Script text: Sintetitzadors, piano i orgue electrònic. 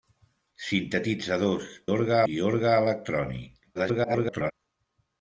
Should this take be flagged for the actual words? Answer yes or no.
yes